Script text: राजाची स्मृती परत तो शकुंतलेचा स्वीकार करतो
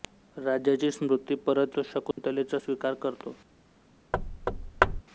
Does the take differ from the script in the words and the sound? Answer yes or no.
yes